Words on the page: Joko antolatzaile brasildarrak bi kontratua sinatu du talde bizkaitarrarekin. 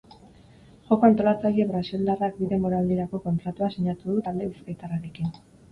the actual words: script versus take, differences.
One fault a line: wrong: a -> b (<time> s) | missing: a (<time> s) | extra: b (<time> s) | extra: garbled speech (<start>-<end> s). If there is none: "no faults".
extra: denboraldirako (2.5 s)